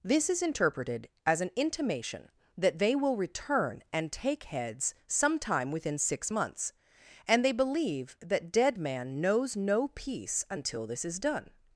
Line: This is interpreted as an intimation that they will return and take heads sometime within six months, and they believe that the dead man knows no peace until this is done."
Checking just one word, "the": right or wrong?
wrong